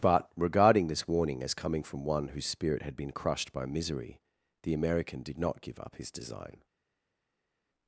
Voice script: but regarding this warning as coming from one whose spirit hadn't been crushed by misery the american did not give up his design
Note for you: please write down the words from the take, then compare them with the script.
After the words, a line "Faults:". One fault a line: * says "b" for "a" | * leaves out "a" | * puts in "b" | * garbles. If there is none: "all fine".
but regarding this warning as coming from one whose spirit had been crushed by misery the american did not give up his design
Faults:
* says "had" for "hadn't"